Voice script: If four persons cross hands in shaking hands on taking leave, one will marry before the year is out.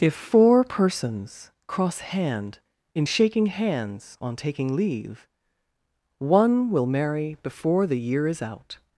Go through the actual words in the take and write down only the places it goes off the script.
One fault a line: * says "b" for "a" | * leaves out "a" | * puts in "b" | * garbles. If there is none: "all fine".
* says "hand" for "hands"